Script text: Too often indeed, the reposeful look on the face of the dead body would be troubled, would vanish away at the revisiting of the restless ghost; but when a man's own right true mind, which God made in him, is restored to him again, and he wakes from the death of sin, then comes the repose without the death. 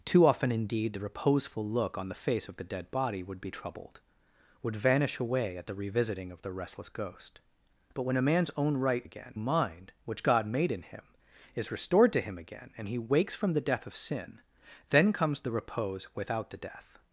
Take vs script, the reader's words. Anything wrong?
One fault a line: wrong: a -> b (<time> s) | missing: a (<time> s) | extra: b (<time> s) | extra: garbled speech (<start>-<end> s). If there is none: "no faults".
wrong: true -> again (9.0 s)